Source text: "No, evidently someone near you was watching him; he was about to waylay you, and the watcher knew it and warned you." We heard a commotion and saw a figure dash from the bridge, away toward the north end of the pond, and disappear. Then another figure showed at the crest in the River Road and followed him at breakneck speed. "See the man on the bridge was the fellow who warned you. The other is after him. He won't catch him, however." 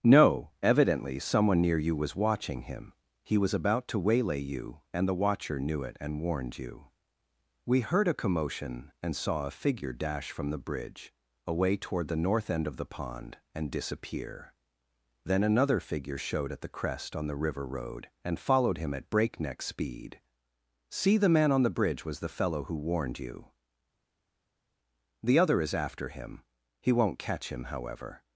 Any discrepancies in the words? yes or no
yes